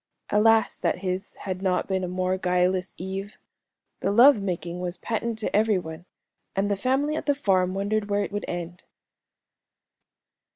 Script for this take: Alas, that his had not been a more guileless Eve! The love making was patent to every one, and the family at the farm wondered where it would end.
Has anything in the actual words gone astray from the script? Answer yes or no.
no